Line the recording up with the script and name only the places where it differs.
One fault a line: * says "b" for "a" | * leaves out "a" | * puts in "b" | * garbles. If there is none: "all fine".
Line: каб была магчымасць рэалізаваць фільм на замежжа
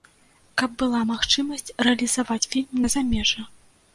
all fine